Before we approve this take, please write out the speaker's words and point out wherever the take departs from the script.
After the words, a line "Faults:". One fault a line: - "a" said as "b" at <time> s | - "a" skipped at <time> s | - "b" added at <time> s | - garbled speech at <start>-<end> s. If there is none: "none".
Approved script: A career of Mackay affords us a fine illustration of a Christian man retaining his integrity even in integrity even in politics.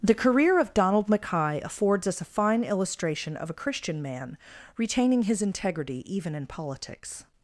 The career of Donald Mackay affords us a fine illustration of a Christian man retaining his integrity even in politics.
Faults:
- "A" said as "The" at 0.0 s
- "Donald" added at 0.7 s
- "integrity even in" skipped at 6.5 s